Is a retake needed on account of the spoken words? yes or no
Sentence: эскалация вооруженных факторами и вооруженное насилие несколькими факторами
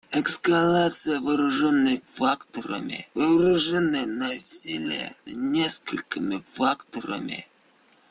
no